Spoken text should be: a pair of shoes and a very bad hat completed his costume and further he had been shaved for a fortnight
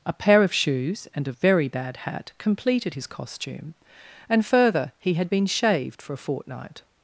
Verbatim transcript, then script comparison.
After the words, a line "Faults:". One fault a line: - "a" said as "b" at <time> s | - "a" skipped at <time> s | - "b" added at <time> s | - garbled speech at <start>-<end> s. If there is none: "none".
a pair of shoes and a very bad hat completed his costume and further he had been shaved for a fortnight
Faults:
none